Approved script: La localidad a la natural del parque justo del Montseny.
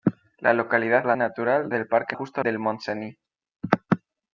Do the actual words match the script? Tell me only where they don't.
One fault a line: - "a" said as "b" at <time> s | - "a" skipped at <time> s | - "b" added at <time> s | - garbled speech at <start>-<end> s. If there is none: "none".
none